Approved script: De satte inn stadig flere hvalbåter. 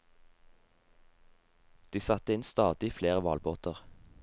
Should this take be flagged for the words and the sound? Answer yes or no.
no